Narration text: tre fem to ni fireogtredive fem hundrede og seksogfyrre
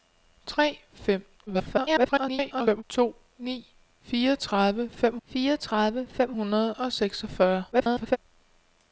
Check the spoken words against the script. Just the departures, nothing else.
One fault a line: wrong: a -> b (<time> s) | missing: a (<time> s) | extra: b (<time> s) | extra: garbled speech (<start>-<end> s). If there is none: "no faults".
extra: garbled speech (1.5-2.8 s)
extra: fireogtredive fem (5.3 s)
extra: garbled speech (7.7-8.2 s)